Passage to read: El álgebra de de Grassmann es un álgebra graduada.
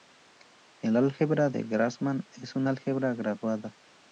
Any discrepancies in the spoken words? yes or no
yes